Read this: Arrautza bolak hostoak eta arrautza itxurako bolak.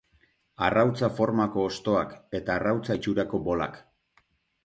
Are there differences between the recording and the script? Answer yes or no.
yes